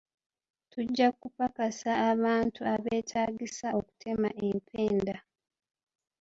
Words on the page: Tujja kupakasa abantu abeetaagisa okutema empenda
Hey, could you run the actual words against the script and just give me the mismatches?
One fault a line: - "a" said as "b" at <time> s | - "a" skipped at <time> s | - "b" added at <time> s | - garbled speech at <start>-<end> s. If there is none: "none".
none